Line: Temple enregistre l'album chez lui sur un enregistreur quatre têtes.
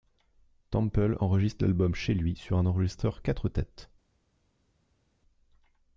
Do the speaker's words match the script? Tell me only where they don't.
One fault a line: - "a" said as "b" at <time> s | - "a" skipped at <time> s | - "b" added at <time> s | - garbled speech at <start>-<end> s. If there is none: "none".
none